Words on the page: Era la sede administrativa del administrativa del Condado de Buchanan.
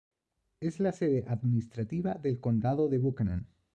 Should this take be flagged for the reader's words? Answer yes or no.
yes